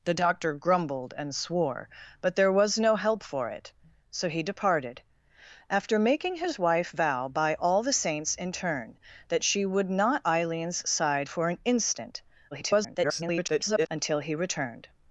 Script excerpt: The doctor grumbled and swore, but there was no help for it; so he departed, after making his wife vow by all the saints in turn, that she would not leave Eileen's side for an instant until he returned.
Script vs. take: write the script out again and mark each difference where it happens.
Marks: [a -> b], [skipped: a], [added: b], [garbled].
The doctor grumbled and swore, but there was no help for it; so he departed, after making his wife vow by all the saints in turn, that she would not [skipped: leave] Eileen's side for an instant [garbled] until he returned.